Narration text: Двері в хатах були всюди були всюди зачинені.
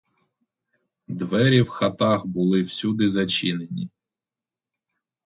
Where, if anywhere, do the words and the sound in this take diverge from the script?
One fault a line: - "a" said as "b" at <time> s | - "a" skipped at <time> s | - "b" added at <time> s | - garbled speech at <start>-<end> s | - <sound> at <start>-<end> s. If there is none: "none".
- "були всюди" skipped at 3.1 s